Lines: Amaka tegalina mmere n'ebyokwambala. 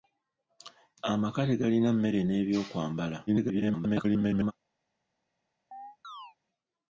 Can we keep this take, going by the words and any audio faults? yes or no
no